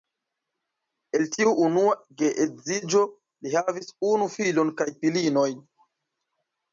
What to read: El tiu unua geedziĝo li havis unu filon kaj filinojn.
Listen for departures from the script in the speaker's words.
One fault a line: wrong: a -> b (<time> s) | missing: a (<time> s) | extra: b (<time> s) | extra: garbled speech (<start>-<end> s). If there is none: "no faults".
no faults